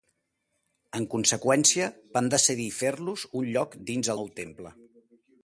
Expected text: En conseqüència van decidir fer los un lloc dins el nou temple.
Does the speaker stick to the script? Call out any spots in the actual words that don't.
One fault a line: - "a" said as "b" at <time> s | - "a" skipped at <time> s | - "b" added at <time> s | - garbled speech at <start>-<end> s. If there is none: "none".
- "el" skipped at 4.1 s